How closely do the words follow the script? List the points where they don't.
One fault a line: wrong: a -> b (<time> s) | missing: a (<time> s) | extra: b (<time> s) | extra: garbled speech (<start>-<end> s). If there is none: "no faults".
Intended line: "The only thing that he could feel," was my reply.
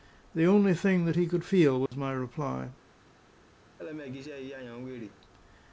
no faults